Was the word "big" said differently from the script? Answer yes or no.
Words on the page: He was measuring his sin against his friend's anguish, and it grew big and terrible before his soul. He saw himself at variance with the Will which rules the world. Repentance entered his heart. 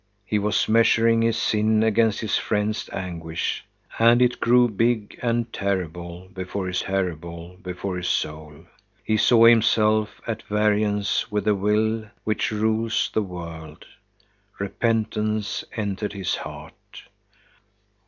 no